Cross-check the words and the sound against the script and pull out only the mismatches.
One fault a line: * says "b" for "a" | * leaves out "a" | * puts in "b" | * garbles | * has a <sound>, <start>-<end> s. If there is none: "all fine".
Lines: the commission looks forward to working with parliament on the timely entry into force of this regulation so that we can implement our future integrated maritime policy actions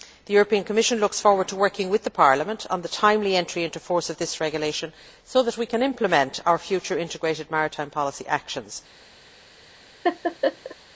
* has a laugh, 10.0-10.8 s